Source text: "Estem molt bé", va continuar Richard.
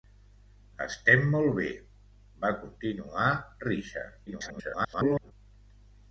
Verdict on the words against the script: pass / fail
fail